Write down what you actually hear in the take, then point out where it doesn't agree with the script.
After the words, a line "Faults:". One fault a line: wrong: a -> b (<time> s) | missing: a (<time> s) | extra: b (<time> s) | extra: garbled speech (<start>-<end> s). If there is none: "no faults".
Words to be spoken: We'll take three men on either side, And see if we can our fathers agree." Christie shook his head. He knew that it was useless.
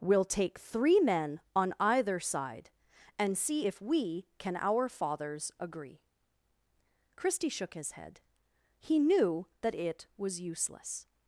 We'll take three men on either side, And see if we can our fathers agree." Christie shook his head. He knew that it was useless.
Faults:
no faults